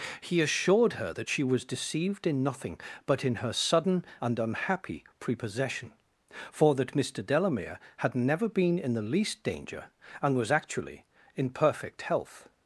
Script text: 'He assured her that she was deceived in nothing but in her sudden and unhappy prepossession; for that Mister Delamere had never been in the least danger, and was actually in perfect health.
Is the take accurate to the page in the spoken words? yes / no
yes